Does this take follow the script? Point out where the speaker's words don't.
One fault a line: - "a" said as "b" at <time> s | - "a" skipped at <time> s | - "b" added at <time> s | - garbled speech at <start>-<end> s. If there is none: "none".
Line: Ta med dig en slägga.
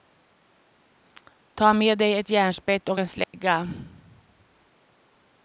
- "ett järnspett och" added at 2.2 s